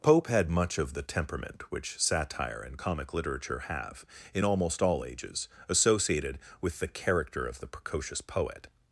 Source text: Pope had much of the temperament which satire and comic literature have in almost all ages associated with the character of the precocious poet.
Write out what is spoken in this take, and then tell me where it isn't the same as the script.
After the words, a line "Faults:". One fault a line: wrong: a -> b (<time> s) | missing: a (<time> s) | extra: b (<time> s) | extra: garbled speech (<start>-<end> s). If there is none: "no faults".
Pope had much of the temperament which satire and comic literature have in almost all ages associated with the character of the precocious poet.
Faults:
no faults